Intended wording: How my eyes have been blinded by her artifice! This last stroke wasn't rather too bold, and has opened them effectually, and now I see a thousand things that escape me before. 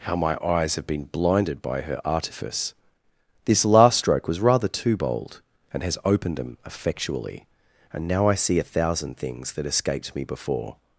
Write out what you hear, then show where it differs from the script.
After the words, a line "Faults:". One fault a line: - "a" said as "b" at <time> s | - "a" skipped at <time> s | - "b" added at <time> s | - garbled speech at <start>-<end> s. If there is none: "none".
How my eyes have been blinded by her artifice! This last stroke was rather too bold, and has opened them effectually, and now I see a thousand things that escaped me before.
Faults:
- "wasn't" said as "was" at 4.3 s
- "escape" said as "escaped" at 9.6 s